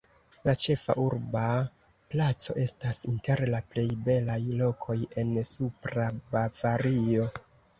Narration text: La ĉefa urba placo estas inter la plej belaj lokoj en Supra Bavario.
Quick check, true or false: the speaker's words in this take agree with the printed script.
true